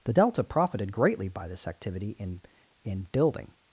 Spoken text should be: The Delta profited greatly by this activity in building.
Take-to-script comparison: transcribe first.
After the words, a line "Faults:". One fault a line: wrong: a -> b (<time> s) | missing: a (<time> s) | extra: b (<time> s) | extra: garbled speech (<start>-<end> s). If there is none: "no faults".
The Delta profited greatly by this activity in in building.
Faults:
extra: in (2.8 s)